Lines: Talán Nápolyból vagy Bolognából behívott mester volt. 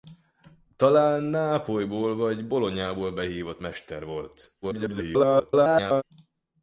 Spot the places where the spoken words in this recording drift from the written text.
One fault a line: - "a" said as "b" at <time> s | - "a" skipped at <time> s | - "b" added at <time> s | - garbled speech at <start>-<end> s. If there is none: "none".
- garbled speech at 4.6-6.0 s